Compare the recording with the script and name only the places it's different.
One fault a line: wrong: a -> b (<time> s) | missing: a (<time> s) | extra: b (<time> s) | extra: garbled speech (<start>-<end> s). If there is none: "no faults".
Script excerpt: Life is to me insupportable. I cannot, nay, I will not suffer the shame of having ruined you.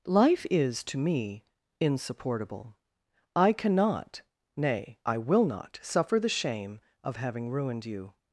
no faults